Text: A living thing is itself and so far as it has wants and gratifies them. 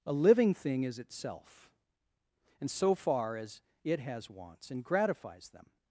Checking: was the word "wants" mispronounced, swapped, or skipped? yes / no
no